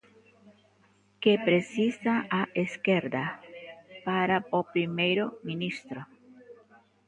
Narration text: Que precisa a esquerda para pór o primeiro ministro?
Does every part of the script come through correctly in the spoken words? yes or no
no